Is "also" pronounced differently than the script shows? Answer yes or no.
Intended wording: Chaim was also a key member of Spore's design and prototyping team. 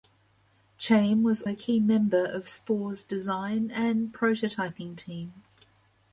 yes